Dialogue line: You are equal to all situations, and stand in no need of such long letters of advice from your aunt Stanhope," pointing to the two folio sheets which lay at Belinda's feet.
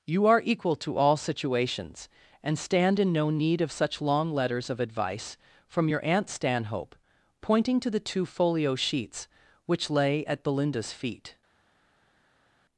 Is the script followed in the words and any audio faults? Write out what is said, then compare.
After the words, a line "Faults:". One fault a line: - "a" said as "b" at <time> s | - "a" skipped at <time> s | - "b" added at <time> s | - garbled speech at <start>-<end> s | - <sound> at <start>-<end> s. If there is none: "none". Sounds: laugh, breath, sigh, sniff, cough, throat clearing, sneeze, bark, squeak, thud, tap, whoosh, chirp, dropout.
You are equal to all situations, and stand in no need of such long letters of advice from your aunt Stanhope," pointing to the two folio sheets which lay at Belinda's feet.
Faults:
none